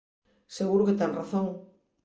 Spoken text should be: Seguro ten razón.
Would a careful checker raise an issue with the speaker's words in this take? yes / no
yes